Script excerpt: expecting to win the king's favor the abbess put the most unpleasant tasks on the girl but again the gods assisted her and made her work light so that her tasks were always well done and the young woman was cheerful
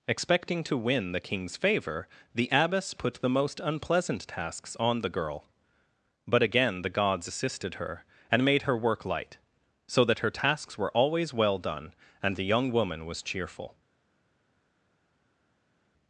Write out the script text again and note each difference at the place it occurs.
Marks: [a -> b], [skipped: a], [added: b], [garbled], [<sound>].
expecting to win the king's favor the abbess put the most unpleasant tasks on the girl but again the gods assisted her and made her work light so that her tasks were always well done and the young woman was cheerful